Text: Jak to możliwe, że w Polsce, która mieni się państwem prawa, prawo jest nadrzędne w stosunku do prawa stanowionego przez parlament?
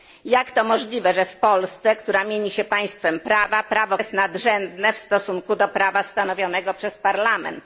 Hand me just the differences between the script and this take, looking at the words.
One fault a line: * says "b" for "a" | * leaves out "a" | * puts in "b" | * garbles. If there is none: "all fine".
all fine